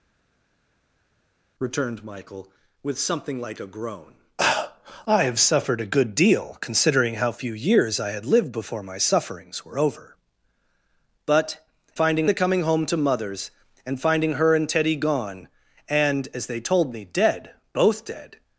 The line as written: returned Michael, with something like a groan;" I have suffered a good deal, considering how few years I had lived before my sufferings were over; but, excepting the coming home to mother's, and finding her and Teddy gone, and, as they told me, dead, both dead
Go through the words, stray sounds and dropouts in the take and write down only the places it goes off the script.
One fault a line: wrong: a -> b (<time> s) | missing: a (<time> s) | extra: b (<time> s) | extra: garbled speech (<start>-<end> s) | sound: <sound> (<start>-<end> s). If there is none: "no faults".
wrong: excepting -> finding (12.0 s)